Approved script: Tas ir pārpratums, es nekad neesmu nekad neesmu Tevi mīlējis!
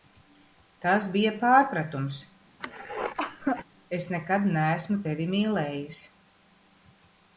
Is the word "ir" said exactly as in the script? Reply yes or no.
no